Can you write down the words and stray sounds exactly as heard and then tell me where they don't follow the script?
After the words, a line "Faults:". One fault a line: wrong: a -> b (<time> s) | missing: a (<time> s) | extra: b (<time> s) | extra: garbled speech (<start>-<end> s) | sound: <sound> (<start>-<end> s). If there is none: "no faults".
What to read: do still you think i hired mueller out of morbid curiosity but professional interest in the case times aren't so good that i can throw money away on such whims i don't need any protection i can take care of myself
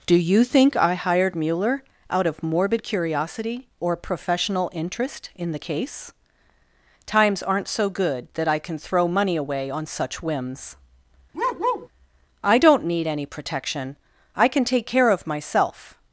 do you think i hired mueller out of morbid curiosity or professional interest in the case times aren't so good that i can throw money away on such whims i don't need any protection i can take care of myself
Faults:
missing: still (0.1 s)
wrong: but -> or (3.8 s)
sound: bark (11.3-11.9 s)